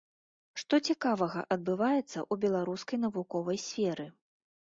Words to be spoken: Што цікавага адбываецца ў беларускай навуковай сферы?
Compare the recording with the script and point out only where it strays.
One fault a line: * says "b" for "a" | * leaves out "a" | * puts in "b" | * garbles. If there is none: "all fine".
all fine